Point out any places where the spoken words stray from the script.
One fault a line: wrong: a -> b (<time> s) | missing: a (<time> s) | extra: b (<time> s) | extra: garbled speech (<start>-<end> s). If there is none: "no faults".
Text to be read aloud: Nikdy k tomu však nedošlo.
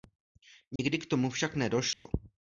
no faults